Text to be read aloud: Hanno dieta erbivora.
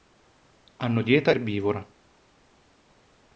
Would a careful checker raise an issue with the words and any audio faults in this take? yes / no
no